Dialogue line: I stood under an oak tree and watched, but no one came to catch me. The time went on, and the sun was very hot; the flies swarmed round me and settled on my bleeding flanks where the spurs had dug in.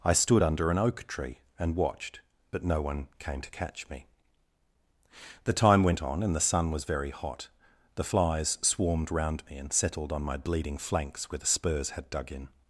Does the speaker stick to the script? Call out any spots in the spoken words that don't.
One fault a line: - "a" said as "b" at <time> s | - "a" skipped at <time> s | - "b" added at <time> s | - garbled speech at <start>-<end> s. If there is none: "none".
none